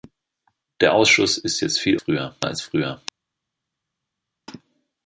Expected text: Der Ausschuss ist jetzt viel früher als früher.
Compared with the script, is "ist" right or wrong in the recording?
right